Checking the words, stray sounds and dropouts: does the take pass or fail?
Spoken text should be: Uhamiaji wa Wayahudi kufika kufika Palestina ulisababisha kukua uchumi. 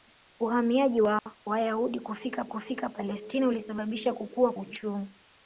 fail